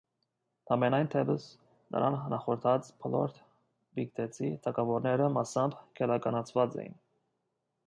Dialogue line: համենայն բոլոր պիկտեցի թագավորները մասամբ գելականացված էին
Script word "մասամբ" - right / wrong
right